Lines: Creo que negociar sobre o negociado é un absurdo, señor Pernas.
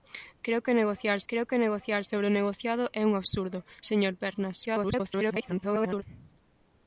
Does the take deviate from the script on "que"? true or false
false